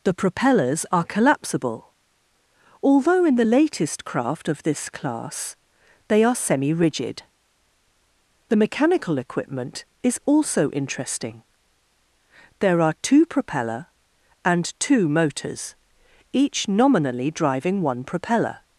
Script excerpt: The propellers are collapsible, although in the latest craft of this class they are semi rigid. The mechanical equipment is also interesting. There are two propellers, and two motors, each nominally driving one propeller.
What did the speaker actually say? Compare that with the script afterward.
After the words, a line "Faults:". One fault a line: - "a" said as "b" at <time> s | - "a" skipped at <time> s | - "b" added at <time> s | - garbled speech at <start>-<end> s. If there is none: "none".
The propellers are collapsible, although in the latest craft of this class they are semi rigid. The mechanical equipment is also interesting. There are two propeller, and two motors, each nominally driving one propeller.
Faults:
- "propellers" said as "propeller" at 13.3 s